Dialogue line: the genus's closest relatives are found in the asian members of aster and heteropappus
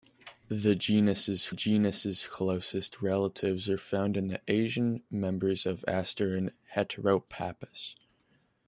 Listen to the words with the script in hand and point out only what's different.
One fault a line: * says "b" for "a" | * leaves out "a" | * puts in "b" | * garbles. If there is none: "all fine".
* puts in "genus's"